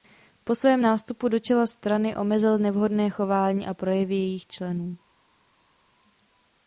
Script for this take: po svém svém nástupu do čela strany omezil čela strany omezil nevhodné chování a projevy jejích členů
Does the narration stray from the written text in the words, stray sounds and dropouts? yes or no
yes